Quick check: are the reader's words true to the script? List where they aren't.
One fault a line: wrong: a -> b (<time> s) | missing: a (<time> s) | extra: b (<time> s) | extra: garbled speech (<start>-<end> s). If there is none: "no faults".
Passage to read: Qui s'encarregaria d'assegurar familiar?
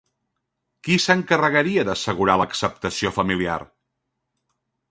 extra: l'acceptació (2.4 s)